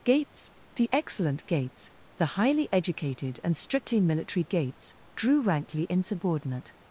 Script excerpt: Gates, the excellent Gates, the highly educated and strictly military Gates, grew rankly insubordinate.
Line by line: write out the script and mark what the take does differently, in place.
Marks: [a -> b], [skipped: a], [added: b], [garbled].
Gates, the excellent Gates, the highly educated and strictly military Gates, [grew -> drew] rankly insubordinate.